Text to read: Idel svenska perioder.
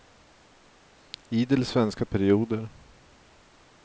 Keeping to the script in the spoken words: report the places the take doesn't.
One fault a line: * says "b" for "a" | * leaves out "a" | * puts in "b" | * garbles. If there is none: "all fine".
all fine